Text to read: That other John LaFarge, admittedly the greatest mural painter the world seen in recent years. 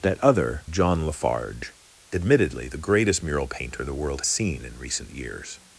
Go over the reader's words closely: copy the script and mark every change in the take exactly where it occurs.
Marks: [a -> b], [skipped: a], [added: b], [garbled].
That other John LaFarge, admittedly the greatest mural painter the world seen in recent years.